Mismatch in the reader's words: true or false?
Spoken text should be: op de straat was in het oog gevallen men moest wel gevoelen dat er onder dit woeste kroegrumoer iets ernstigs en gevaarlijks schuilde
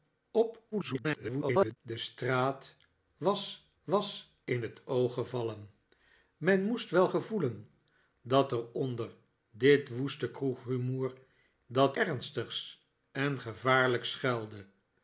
true